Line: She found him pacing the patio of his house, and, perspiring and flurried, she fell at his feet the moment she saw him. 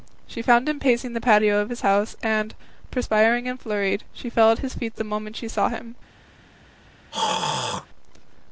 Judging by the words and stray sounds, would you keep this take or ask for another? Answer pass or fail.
fail